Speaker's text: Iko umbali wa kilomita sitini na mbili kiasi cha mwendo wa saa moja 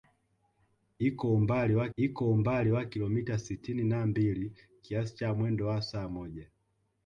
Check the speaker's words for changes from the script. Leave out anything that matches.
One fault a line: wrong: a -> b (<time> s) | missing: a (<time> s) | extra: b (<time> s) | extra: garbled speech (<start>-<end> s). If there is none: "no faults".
extra: iko umbali wa (2.0 s)